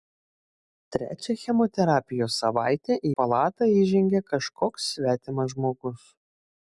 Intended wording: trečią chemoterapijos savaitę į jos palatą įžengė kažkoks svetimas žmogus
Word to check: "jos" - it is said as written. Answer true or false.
false